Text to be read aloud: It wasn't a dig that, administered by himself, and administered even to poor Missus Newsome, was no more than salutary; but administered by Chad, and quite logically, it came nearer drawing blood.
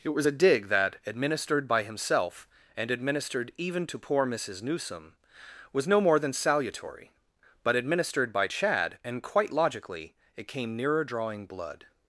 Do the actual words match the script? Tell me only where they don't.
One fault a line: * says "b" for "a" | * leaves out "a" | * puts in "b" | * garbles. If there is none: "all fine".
* says "was" for "wasn't"